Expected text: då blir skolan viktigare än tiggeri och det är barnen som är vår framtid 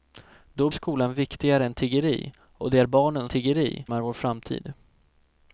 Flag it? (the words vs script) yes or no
yes